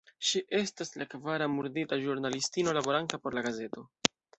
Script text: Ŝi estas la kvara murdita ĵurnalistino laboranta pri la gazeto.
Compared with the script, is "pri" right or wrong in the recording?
wrong